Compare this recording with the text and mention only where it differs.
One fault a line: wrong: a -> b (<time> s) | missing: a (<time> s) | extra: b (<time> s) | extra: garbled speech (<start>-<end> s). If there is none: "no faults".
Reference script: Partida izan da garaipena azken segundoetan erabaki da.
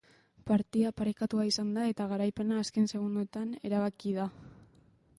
extra: parekatua (1.0 s)
extra: eta (1.9 s)